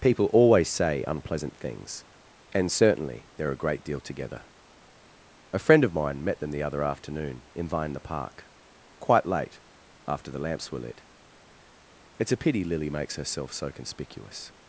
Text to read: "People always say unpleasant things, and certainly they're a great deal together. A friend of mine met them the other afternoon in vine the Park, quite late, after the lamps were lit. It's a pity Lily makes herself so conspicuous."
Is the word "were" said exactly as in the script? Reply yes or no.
yes